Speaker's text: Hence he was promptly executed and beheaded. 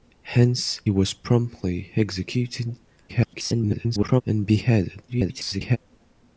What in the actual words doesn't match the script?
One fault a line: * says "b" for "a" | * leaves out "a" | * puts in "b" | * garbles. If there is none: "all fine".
* leaves out "he"
* garbles
* garbles